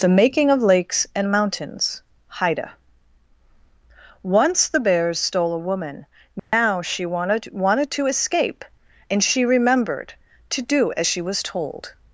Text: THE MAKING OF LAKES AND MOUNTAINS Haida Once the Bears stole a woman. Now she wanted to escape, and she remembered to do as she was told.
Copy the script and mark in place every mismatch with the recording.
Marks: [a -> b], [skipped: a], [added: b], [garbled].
THE MAKING OF LAKES AND MOUNTAINS Haida Once the Bears stole a woman. Now she wanted [added: wanted] to escape, and she remembered to do as she was told.